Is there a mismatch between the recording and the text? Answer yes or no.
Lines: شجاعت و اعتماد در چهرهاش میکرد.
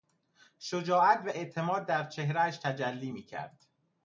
yes